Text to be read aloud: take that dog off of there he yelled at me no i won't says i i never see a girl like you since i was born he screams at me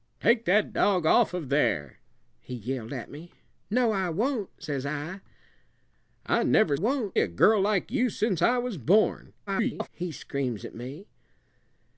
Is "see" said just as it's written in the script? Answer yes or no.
no